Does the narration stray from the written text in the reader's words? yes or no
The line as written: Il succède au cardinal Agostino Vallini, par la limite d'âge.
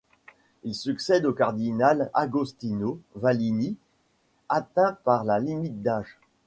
yes